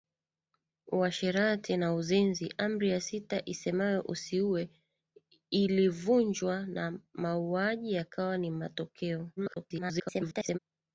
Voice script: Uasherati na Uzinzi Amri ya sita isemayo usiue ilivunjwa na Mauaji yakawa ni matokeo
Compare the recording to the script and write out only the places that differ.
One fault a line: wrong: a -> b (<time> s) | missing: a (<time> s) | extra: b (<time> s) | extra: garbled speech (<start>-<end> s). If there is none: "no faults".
extra: garbled speech (9.4-10.6 s)